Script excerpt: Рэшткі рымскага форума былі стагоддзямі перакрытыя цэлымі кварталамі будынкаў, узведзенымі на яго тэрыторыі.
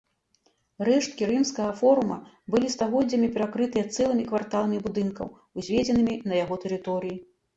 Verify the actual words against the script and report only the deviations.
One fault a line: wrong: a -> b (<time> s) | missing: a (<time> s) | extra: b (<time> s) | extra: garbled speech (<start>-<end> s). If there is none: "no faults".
no faults